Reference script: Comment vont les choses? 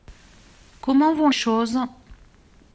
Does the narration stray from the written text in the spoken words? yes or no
yes